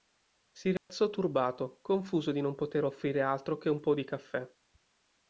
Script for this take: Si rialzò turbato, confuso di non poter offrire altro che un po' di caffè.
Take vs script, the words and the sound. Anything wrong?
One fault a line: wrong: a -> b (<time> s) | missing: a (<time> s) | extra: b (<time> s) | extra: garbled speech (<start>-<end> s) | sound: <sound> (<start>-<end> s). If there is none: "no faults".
sound: dropout (0.8-0.9 s)